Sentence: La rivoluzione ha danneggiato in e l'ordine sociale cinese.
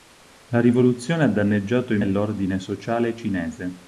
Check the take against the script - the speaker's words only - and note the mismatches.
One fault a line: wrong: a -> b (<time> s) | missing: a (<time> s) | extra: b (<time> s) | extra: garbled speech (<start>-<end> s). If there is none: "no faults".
no faults